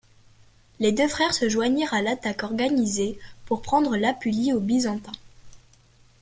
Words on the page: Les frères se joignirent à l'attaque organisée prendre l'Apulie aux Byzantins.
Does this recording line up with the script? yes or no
no